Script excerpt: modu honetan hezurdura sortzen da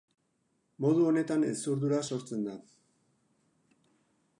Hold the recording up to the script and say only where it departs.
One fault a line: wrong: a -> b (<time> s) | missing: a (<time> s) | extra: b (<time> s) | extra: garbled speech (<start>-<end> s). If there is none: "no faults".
no faults